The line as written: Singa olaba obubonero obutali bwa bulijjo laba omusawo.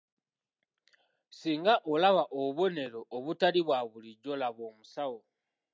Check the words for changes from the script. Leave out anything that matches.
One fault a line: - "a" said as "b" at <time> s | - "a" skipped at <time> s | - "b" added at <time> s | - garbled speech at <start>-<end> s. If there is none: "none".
none